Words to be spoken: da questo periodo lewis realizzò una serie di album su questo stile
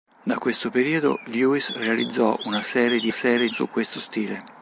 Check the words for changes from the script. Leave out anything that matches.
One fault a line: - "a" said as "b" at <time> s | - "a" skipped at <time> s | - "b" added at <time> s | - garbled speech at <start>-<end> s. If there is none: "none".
- "album" said as "serie" at 3.1 s